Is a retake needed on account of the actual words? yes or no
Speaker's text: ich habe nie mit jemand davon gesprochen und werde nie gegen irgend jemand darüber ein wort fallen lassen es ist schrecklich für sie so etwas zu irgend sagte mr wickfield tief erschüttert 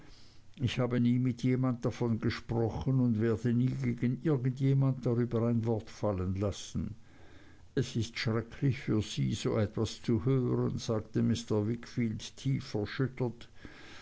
yes